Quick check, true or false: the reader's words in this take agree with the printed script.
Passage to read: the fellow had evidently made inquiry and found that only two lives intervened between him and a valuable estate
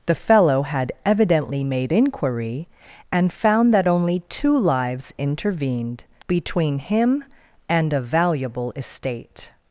true